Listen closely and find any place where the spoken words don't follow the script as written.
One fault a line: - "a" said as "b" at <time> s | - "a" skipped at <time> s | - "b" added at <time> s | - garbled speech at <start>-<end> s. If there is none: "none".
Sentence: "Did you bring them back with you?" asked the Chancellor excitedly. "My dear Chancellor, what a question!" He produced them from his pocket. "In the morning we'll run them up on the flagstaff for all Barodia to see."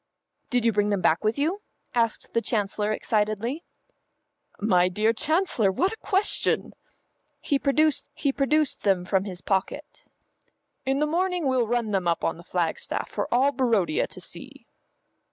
- "he produced" added at 8.1 s